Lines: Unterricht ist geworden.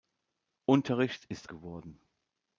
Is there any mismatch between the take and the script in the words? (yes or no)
no